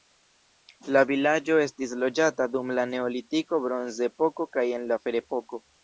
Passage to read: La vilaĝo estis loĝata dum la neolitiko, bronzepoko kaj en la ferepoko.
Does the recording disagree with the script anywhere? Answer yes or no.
no